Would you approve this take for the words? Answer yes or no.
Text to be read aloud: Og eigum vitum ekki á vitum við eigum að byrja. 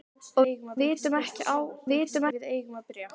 yes